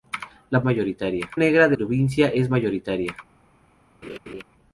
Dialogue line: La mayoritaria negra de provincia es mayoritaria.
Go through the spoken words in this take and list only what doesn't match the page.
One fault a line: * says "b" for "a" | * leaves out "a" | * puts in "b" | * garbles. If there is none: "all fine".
all fine